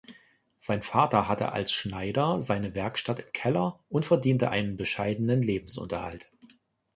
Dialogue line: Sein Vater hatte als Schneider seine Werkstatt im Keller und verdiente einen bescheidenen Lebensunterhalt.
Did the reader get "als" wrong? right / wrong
right